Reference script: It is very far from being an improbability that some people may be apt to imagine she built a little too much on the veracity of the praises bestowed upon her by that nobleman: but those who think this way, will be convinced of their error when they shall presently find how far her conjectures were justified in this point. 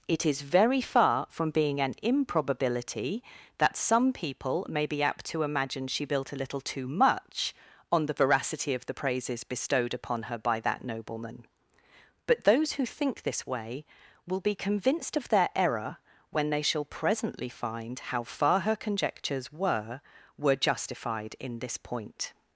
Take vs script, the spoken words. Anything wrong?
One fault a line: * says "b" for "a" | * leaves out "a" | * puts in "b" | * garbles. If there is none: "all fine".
* puts in "were"